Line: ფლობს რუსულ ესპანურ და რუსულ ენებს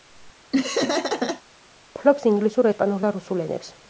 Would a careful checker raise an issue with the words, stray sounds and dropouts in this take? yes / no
yes